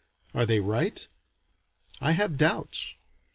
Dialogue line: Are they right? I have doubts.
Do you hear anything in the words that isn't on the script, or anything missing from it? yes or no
no